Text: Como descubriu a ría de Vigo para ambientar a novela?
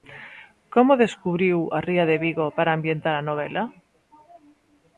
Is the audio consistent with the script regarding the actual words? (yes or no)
yes